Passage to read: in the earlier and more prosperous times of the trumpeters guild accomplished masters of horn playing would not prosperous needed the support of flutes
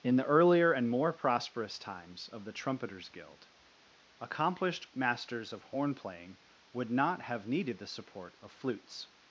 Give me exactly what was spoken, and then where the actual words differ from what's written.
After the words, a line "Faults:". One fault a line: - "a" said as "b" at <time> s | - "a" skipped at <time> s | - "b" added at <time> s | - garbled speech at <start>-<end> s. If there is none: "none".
in the earlier and more prosperous times of the trumpeters guild accomplished masters of horn playing would not have needed the support of flutes
Faults:
- "prosperous" said as "have" at 7.2 s